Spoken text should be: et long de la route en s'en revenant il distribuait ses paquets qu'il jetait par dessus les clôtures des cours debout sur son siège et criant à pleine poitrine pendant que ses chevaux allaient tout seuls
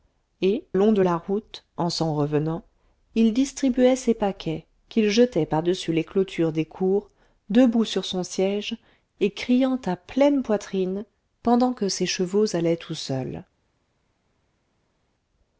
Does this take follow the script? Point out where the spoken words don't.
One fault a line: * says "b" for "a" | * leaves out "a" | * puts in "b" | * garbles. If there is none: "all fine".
all fine